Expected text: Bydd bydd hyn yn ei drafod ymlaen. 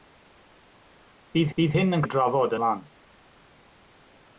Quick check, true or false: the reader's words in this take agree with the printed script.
true